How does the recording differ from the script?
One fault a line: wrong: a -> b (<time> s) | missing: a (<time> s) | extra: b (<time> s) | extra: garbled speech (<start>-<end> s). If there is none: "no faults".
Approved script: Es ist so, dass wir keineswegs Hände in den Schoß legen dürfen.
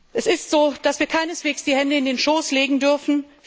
extra: die (1.6 s)